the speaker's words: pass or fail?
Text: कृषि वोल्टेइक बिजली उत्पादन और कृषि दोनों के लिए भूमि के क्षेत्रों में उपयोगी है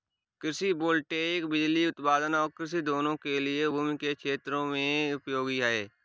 pass